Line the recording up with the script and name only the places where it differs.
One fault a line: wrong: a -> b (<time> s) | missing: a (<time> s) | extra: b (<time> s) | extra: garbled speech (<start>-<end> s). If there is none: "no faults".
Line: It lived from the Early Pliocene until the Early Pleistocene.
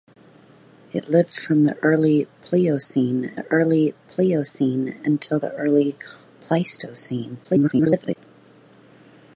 extra: the Early Pliocene (3.3 s)
extra: garbled speech (7.4-8.2 s)